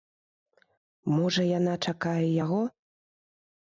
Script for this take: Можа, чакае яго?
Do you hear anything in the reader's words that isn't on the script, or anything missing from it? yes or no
yes